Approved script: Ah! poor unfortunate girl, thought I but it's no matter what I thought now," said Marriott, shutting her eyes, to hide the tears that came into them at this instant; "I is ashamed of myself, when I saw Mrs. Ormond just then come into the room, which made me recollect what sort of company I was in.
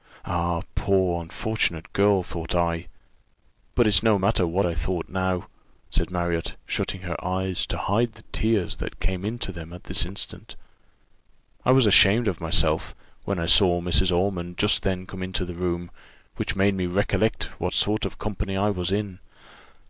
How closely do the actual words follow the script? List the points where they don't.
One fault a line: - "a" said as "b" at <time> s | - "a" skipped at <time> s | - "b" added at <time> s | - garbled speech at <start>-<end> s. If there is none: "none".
- "is" said as "was" at 11.7 s